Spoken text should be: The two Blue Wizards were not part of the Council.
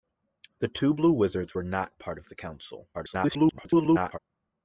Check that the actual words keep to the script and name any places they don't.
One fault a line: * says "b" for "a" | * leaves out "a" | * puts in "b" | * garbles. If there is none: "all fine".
* garbles